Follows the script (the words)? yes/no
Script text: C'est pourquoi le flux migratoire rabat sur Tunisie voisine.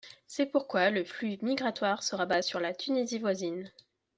no